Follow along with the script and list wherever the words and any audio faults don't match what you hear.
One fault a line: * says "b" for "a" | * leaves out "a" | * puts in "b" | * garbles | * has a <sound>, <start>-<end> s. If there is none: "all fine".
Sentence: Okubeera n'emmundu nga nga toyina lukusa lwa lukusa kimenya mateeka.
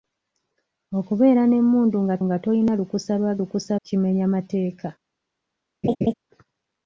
* has a laugh, 5.8-6.1 s